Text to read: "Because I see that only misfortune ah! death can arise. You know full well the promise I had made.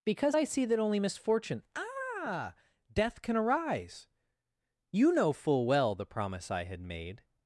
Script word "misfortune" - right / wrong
right